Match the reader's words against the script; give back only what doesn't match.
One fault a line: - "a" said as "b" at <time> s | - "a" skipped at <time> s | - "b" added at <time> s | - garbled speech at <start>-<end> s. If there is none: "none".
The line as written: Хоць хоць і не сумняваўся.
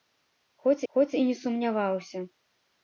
none